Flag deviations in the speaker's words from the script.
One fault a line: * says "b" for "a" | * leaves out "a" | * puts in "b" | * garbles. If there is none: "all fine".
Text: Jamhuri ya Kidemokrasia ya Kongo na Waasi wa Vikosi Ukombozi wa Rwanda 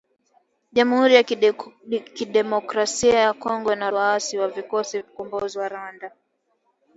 all fine